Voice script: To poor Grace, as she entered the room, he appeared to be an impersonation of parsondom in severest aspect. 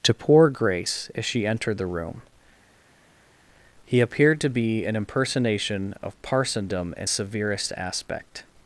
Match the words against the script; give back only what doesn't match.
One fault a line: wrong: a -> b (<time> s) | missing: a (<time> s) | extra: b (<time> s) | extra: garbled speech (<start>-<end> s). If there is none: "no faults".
no faults